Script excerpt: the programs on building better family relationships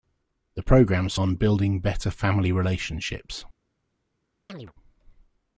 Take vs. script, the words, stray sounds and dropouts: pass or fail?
fail